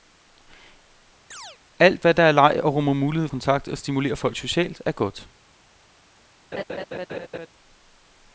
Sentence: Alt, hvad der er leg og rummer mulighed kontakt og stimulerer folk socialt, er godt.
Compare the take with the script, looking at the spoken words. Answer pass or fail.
pass